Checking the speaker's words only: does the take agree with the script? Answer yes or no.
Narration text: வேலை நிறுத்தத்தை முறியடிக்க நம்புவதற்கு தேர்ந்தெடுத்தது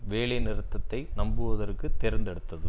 no